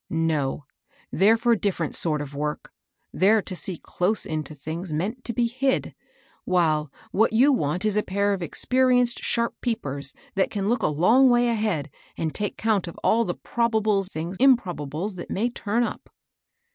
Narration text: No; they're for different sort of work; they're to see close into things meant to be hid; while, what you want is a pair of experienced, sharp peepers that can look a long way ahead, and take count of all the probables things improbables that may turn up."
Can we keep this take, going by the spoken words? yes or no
yes